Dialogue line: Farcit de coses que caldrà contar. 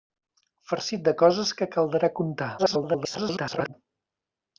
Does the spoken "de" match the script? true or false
true